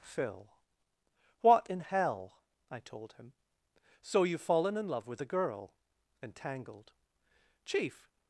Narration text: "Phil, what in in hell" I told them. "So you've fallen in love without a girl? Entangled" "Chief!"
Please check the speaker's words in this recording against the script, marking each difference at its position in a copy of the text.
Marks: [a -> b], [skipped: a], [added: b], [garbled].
"Phil, what in [skipped: in] hell" I told [them. -> him] "So you've fallen in love [without -> with] a girl? Entangled" "Chief!"